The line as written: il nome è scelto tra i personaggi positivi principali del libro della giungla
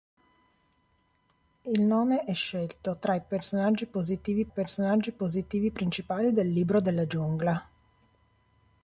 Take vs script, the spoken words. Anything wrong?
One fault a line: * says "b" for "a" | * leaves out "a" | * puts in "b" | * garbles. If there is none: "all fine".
* puts in "personaggi positivi"